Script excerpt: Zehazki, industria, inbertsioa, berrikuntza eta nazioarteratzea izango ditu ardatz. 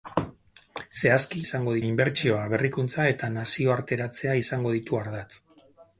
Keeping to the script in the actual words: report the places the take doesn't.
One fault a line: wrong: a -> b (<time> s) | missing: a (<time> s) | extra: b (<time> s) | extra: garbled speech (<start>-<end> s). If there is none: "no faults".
wrong: industria -> izango (1.5 s)